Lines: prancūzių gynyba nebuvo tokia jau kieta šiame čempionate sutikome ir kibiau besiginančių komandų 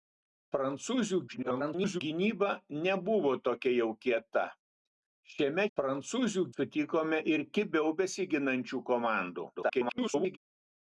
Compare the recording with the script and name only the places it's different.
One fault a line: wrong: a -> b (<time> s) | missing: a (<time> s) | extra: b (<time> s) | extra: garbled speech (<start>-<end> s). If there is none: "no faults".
extra: garbled speech (1.3-2.0 s)
wrong: čempionate -> prancūzių (5.8 s)
extra: garbled speech (9.5-10.4 s)